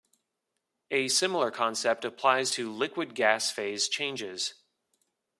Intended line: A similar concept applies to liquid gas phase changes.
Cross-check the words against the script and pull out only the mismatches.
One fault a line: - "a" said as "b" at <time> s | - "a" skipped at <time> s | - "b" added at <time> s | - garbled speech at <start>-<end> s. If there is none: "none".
none